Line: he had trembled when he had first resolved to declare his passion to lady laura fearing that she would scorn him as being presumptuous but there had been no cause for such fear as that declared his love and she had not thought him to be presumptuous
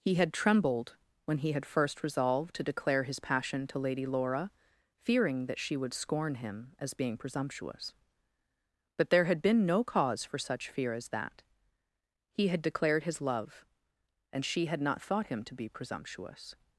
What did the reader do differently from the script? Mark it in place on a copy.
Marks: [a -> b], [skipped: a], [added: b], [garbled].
he had trembled when he had first resolved to declare his passion to lady laura fearing that she would scorn him as being presumptuous but there had been no cause for such fear as that [added: he had] declared his love and she had not thought him to be presumptuous